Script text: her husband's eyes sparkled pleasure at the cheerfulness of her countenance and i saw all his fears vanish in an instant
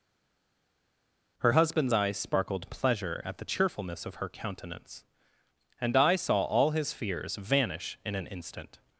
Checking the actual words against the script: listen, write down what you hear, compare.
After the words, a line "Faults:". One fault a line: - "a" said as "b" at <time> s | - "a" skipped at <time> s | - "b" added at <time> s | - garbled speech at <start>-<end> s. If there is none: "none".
her husband's eyes sparkled pleasure at the cheerfulness of her countenance and i saw all his fears vanish in an instant
Faults:
none